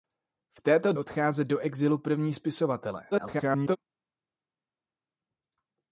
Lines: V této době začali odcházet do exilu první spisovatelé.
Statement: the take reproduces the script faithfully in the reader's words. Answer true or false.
false